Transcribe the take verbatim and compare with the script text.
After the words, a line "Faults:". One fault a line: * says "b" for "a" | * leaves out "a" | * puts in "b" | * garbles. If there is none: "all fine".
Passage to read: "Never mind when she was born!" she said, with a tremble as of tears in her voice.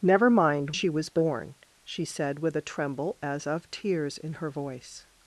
"Never mind she was born!" she said, with a tremble as of tears in her voice.
Faults:
* leaves out "when"